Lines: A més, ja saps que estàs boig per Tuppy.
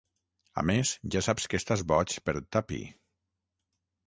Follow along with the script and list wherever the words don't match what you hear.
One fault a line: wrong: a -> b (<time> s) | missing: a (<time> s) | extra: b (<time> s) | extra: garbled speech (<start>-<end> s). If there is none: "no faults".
no faults